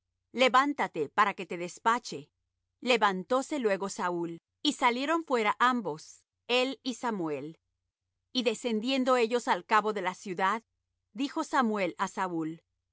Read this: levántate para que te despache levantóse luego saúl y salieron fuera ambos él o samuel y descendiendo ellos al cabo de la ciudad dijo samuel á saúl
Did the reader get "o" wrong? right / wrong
wrong